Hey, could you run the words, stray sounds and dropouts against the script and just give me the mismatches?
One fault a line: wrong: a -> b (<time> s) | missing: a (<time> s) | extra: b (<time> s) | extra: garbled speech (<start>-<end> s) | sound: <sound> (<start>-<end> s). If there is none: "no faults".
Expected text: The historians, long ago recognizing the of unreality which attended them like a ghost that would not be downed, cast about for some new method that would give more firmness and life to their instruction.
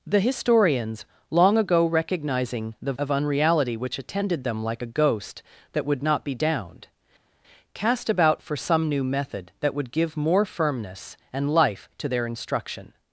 no faults